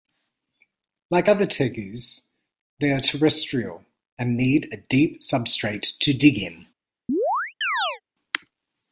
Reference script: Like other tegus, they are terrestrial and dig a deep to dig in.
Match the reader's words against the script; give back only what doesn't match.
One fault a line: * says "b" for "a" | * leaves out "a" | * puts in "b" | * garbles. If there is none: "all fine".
* says "need" for "dig"
* puts in "substrate"